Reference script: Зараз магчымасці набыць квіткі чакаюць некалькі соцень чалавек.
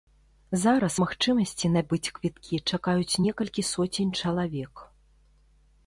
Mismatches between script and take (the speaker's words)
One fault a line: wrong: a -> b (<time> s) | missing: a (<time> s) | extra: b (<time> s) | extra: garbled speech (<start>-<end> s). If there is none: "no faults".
no faults